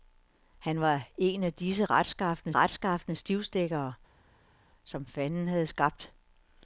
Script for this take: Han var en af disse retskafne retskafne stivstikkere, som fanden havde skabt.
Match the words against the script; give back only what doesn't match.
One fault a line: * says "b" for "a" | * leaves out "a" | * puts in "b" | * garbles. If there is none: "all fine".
all fine